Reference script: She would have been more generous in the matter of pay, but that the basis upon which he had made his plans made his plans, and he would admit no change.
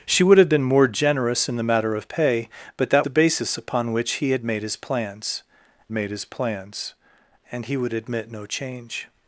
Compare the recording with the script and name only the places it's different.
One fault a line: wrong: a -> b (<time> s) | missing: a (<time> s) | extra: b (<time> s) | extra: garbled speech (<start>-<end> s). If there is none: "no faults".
no faults